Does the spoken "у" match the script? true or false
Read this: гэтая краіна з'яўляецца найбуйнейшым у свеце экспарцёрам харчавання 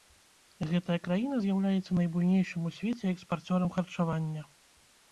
true